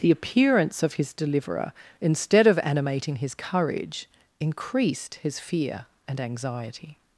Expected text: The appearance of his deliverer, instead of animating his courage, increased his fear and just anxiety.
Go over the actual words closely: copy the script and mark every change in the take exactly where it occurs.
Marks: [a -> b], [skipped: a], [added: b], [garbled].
The appearance of his deliverer, instead of animating his courage, increased his fear and [skipped: just] anxiety.